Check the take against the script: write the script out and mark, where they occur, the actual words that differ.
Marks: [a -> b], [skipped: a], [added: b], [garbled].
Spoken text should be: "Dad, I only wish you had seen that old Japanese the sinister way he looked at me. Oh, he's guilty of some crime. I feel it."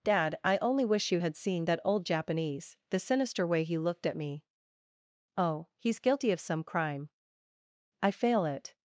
"Dad, I only wish you had seen that old Japanese the sinister way he looked at me. Oh, he's guilty of some crime. I [feel -> fail] it."